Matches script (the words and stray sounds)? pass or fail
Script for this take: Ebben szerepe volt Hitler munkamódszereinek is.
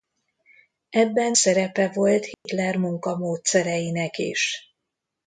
fail